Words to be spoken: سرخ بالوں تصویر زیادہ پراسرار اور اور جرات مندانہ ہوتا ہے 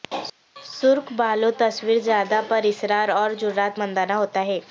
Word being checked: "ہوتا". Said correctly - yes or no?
yes